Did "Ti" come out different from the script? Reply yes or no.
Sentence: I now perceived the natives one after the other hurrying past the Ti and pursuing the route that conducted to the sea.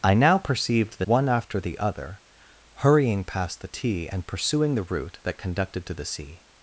no